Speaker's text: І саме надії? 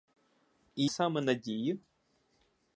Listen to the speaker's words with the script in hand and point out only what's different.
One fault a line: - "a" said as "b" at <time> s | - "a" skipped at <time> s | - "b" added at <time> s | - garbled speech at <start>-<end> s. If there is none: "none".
none